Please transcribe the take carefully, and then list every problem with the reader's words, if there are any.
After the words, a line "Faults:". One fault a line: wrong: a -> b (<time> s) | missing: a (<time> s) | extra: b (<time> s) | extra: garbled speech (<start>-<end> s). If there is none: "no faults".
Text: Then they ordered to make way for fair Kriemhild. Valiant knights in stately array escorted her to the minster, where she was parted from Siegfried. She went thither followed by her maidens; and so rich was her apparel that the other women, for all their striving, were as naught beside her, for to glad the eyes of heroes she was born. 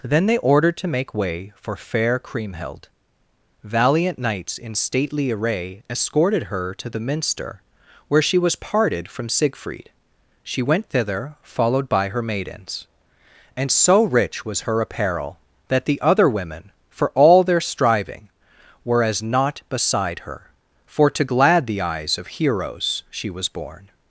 Then they ordered to make way for fair Kriemhild. Valiant knights in stately array escorted her to the minster, where she was parted from Siegfried. She went thither followed by her maidens; and so rich was her apparel that the other women, for all their striving, were as naught beside her, for to glad the eyes of heroes she was born.
Faults:
no faults